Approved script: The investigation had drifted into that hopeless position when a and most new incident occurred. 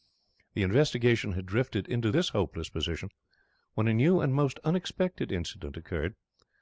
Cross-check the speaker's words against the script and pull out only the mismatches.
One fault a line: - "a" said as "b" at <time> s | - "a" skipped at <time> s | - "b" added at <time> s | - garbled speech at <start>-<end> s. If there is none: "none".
- "that" said as "this" at 2.1 s
- "new" added at 3.9 s
- "new" said as "unexpected" at 4.6 s